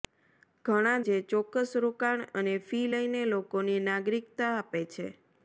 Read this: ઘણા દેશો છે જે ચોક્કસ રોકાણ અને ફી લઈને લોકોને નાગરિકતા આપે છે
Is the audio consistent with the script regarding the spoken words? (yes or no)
no